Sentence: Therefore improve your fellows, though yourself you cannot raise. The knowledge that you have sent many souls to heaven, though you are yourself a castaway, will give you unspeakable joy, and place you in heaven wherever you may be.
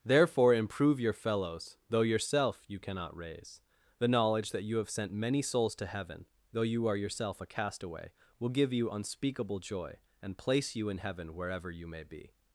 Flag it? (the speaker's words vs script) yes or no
no